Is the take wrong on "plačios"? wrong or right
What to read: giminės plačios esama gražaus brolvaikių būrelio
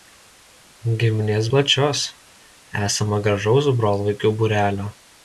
right